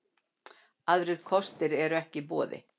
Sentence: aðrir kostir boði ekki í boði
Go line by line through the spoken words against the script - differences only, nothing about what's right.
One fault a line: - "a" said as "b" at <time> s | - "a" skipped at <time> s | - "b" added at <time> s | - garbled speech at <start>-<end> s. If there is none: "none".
- "boði" said as "eru" at 1.9 s